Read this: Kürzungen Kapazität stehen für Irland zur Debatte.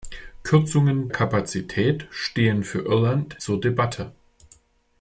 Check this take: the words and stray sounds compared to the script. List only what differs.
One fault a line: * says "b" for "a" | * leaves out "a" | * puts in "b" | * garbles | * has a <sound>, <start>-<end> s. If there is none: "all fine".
all fine